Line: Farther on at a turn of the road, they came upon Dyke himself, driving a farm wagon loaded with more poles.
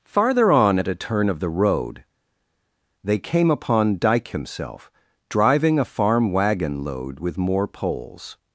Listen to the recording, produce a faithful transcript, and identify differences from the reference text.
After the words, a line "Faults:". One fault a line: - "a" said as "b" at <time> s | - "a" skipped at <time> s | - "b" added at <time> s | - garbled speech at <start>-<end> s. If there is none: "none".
Farther on at a turn of the road, they came upon Dyke himself, driving a farm wagon load with more poles.
Faults:
- "loaded" said as "load" at 6.8 s